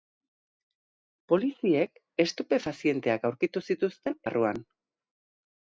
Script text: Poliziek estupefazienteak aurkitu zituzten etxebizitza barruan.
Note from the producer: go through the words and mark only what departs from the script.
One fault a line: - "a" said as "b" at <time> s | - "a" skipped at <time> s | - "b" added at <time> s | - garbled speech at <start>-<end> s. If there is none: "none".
- "etxebizitza" skipped at 4.2 s